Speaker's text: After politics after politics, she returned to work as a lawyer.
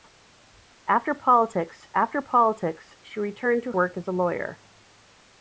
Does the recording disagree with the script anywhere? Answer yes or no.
no